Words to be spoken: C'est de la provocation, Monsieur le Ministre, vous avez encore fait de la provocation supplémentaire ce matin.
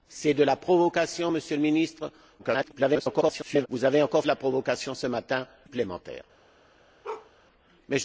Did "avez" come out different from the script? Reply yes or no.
no